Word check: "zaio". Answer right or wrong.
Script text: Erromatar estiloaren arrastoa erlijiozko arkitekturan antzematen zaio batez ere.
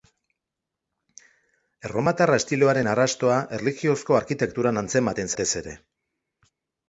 wrong